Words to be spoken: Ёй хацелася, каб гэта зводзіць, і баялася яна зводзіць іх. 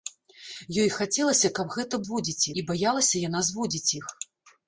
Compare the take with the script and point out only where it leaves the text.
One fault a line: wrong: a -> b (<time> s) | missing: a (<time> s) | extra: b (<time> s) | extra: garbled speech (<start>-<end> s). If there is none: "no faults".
no faults